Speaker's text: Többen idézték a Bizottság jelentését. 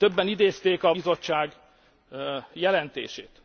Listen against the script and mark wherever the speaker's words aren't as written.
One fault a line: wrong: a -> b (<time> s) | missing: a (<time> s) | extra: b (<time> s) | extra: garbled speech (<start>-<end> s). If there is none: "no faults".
no faults